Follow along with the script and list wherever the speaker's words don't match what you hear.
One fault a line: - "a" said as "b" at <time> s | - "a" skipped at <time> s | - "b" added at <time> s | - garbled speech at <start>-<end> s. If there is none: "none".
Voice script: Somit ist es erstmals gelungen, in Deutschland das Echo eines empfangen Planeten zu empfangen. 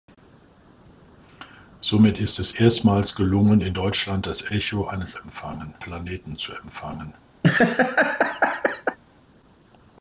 none